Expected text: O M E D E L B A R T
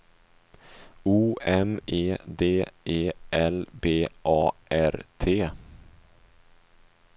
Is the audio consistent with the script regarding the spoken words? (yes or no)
yes